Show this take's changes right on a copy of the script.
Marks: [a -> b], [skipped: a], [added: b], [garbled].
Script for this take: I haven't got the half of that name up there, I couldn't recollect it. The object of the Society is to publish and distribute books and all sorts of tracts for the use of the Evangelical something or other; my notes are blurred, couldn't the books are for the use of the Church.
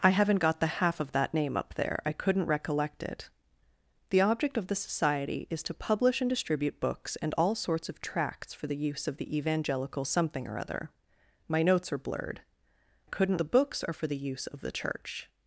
I haven't got the half of that name up there, I couldn't recollect it. The object of the Society is to publish and distribute books and all sorts of tracts for the use of the Evangelical something or other; my notes are blurred, couldn't the books are for the use of the Church.